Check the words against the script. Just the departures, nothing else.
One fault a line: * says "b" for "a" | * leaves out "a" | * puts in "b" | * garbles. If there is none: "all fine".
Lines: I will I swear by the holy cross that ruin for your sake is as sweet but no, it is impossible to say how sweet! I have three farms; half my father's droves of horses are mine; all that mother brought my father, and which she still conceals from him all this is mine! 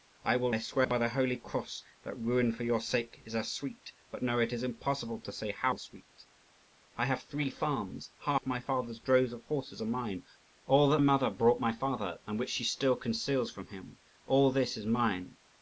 all fine